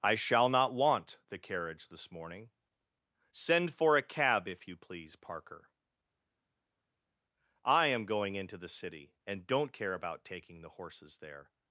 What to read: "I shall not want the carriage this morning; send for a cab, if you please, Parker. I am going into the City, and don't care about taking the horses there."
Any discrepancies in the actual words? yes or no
no